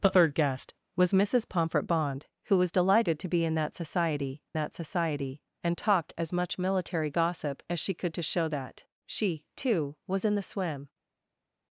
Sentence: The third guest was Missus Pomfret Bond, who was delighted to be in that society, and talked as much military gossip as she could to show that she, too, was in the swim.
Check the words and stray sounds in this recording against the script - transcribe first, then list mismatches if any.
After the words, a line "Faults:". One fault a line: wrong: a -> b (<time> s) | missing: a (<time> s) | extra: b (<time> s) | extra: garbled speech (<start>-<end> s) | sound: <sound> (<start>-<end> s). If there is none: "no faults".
The third guest was Missus Pomfret Bond, who was delighted to be in that society that society, and talked as much military gossip as she could to show that she, too, was in the swim.
Faults:
extra: that society (4.5 s)